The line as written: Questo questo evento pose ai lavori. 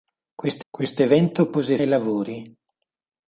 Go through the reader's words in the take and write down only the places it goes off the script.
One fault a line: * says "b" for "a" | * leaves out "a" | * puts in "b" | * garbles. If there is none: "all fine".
all fine